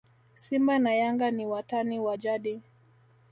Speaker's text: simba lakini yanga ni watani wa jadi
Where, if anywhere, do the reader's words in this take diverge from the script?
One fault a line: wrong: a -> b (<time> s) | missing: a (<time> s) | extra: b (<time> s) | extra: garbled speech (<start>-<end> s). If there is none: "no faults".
wrong: lakini -> na (0.8 s)